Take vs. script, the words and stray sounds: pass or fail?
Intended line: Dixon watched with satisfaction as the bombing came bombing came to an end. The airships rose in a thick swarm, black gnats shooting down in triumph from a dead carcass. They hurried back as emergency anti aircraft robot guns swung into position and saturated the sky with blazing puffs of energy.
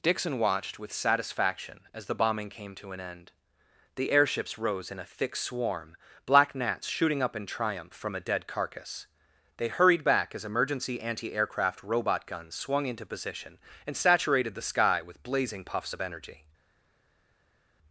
fail